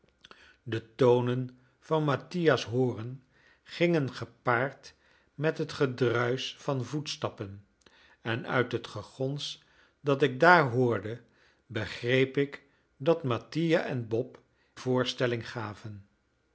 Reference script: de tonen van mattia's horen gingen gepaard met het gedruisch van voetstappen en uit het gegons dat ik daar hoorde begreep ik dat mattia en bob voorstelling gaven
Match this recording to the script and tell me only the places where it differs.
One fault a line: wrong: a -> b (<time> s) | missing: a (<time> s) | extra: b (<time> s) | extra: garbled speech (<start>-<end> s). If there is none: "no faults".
no faults